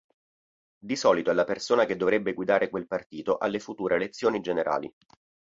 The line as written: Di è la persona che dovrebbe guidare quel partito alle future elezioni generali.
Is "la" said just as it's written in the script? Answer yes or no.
yes